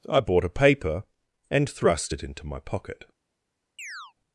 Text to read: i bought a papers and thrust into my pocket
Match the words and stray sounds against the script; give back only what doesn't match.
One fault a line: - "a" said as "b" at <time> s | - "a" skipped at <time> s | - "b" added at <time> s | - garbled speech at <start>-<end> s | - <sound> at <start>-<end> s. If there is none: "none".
- "papers" said as "paper" at 0.5 s
- "it" added at 2.1 s
- chirp at 3.8-4.1 s